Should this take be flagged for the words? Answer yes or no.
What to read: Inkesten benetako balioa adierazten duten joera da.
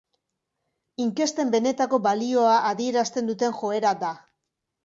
no